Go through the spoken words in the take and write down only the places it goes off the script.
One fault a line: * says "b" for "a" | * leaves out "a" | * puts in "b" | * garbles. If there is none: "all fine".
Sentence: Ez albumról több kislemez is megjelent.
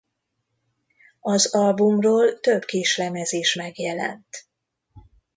* says "Az" for "Ez"